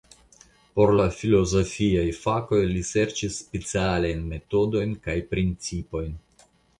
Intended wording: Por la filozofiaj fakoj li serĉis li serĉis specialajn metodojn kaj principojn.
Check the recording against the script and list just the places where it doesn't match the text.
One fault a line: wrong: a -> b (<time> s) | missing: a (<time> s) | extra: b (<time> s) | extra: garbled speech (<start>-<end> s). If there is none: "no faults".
missing: li serĉis (3.4 s)